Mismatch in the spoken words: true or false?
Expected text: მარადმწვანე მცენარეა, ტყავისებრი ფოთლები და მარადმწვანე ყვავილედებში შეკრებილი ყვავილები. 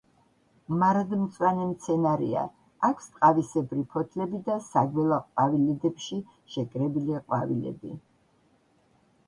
true